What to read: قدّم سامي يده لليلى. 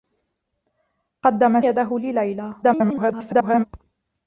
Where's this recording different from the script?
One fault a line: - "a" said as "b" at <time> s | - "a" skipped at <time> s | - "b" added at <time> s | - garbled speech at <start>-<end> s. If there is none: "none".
- "سامي" skipped at 1.6 s
- garbled speech at 2.6-3.6 s